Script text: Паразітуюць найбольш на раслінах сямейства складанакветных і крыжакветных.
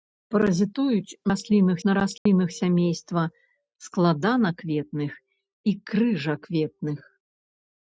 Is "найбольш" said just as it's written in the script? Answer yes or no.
no